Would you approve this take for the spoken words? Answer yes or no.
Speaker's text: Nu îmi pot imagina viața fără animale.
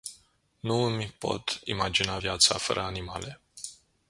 yes